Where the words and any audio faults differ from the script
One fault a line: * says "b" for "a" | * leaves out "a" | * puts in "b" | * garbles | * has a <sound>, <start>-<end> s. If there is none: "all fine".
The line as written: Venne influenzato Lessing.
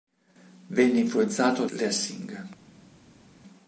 all fine